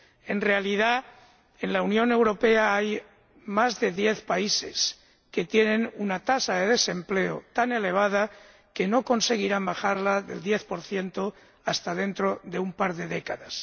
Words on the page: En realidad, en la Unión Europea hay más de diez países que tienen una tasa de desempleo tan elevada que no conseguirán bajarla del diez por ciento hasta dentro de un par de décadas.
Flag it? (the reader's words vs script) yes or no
no